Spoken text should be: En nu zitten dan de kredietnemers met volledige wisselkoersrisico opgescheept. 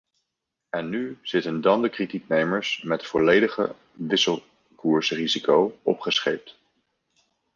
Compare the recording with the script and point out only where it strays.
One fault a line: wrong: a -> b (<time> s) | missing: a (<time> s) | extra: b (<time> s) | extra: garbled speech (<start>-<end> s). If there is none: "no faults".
no faults